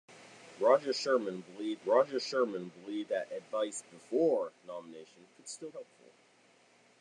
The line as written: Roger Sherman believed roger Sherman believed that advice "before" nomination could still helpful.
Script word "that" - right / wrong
right